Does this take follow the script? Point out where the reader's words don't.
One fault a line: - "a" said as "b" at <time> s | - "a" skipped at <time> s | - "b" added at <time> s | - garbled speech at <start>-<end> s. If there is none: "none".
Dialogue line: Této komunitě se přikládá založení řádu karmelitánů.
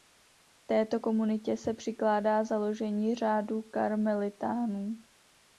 none